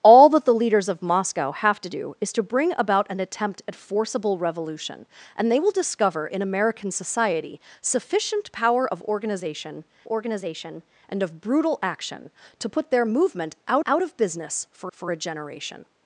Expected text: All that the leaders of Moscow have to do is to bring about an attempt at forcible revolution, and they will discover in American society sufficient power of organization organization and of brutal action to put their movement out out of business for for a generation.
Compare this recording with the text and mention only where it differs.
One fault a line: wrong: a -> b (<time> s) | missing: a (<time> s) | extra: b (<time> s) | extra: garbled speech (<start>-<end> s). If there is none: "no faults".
no faults